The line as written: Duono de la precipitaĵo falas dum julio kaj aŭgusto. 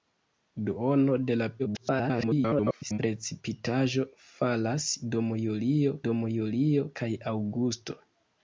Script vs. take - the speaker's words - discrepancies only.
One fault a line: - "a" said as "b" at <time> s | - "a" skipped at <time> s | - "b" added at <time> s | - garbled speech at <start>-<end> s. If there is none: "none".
- garbled speech at 1.6-3.0 s
- "dum julio" added at 6.1 s